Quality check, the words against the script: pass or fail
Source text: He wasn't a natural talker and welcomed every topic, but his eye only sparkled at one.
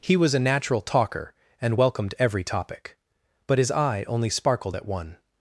fail